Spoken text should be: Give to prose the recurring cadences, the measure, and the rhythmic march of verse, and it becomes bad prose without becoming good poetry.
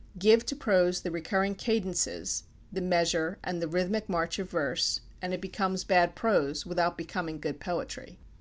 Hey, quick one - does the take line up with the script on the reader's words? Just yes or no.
yes